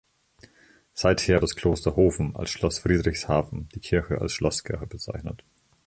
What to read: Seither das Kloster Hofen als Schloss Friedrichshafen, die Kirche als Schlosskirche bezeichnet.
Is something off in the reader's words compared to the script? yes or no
no